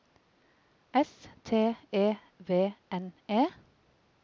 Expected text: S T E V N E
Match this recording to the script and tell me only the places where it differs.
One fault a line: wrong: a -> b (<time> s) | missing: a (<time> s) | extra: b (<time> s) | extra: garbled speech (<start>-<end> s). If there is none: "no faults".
no faults